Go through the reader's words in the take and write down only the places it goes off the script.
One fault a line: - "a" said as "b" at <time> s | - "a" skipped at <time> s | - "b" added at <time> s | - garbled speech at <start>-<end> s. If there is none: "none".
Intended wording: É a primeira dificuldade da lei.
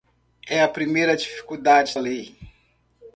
- "da" skipped at 2.0 s